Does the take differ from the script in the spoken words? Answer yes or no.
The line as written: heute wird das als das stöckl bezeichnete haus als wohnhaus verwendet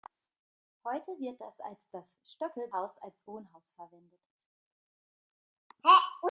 yes